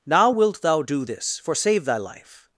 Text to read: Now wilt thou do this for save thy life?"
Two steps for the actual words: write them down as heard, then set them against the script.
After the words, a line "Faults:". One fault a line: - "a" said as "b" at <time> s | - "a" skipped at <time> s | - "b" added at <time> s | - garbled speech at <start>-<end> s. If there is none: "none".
Now wilt thou do this for save thy life?"
Faults:
none